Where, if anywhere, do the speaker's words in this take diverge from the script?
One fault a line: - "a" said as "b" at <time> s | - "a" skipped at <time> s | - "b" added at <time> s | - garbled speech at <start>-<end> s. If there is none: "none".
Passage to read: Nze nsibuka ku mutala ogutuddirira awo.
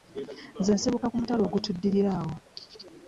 none